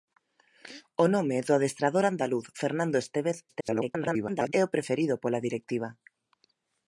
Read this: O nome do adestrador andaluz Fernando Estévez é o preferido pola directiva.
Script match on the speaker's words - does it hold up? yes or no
no